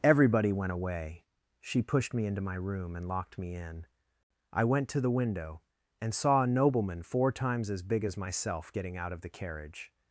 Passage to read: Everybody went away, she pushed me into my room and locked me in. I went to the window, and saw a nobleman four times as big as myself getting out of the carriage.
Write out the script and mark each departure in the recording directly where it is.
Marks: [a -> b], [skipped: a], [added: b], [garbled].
Everybody went away, she pushed me into my room and locked me in. I went to the window, and saw a nobleman four times as big as myself getting out of the carriage.